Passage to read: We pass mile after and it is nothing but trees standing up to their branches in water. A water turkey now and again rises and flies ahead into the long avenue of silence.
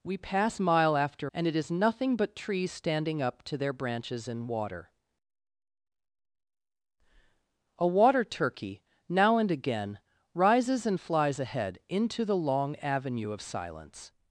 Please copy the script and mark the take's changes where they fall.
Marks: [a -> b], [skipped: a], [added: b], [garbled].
We pass mile after and it is nothing but trees standing up to their branches in water. A water turkey now and again rises and flies ahead into the long avenue of silence.